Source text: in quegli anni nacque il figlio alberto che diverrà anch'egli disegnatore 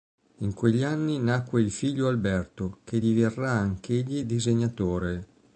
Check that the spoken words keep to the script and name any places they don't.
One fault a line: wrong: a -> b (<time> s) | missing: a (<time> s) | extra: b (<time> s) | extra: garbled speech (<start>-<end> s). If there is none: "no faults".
no faults